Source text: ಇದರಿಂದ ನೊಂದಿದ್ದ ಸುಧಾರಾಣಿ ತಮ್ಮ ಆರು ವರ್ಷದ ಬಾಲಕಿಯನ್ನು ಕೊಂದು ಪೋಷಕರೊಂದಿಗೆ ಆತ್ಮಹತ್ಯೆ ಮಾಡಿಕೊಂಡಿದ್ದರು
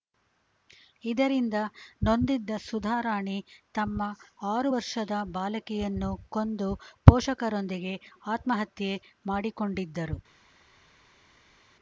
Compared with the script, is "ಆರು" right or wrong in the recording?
right